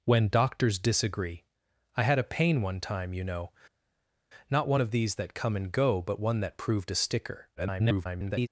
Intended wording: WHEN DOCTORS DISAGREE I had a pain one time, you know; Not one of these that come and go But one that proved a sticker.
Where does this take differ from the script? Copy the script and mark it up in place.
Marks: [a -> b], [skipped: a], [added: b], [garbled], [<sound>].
WHEN DOCTORS DISAGREE I had a pain one time, you know; Not one of these that come and go But one that proved a sticker. [garbled]